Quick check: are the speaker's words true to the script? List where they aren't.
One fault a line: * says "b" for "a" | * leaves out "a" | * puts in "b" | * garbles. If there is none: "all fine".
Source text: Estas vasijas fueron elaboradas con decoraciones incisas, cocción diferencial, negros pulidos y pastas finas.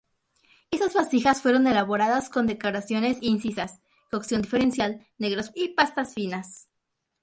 * leaves out "pulidos"